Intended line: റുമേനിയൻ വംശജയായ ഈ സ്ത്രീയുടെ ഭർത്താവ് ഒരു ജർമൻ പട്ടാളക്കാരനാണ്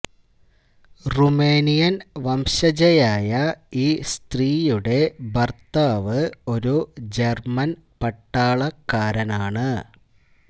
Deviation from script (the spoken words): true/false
false